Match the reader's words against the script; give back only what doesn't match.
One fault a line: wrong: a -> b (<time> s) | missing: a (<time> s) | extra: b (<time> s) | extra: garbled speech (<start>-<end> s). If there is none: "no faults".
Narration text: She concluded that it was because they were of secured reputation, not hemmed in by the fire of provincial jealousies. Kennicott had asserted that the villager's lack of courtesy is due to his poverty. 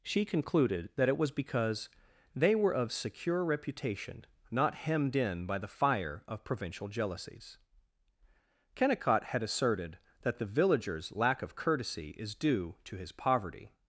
wrong: secured -> secure (2.9 s)